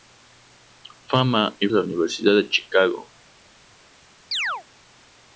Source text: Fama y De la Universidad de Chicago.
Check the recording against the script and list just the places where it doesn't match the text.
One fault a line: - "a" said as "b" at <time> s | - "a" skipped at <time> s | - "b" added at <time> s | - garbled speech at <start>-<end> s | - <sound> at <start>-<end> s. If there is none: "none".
- chirp at 4.3-4.6 s